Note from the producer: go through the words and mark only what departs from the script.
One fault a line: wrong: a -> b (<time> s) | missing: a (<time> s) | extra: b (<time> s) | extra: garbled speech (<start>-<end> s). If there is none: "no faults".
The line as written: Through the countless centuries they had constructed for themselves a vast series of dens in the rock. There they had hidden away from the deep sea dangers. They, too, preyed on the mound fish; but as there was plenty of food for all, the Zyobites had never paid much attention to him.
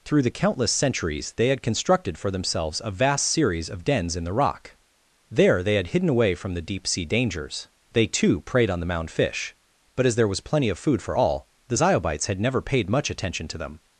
wrong: him -> them (13.6 s)